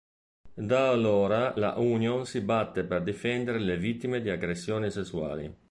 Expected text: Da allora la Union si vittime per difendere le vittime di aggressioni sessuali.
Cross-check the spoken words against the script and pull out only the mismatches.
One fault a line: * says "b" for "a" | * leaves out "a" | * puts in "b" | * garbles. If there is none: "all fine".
* says "batte" for "vittime"